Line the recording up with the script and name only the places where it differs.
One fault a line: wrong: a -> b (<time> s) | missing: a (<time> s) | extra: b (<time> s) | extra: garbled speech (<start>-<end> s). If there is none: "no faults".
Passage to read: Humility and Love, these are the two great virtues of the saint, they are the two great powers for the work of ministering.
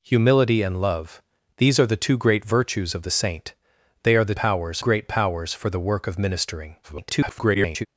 wrong: two -> powers (4.3 s)
extra: garbled speech (6.8-7.9 s)